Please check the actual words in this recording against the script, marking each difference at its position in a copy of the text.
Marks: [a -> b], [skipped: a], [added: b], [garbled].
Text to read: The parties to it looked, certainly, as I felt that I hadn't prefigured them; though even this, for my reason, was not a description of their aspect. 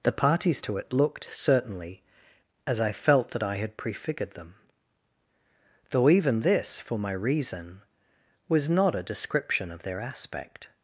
The parties to it looked, certainly, as I felt that I [hadn't -> had] prefigured them; though even this, for my reason, was not a description of their aspect.